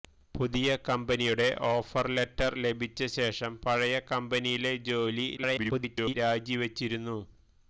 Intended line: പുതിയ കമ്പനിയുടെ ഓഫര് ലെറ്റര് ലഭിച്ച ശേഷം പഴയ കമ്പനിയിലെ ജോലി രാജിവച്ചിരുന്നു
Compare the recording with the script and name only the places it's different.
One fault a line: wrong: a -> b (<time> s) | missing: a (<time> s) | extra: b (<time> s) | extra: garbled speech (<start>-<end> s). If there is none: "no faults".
extra: garbled speech (5.4-6.1 s)